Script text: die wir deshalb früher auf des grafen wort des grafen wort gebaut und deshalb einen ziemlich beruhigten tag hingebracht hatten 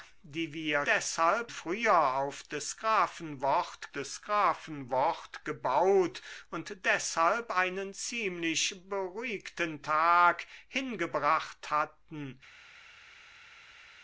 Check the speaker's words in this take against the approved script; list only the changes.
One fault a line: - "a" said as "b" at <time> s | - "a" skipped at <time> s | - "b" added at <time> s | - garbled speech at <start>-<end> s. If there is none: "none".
none